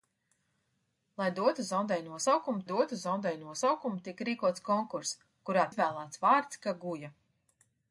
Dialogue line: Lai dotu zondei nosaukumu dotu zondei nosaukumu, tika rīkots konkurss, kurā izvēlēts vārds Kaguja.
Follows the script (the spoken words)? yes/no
yes